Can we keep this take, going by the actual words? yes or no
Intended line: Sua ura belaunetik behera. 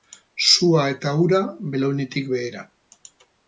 no